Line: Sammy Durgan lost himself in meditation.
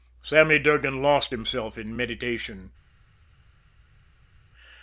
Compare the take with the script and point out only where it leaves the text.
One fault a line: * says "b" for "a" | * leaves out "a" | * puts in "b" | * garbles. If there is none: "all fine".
all fine